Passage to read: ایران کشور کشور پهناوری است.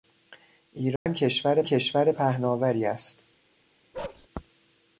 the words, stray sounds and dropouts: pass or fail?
fail